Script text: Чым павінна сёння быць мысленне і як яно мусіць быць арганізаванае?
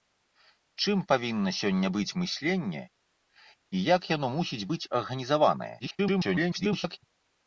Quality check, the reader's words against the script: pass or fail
fail